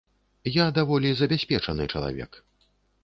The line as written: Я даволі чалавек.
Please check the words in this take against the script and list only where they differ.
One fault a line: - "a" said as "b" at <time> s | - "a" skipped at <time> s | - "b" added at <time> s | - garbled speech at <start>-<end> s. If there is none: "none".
- "забяспечаны" added at 1.2 s